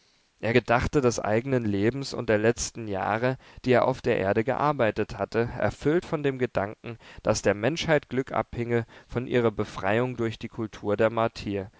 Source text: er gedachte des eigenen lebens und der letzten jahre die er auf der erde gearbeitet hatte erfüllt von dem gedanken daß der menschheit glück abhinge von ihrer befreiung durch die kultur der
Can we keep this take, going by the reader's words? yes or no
yes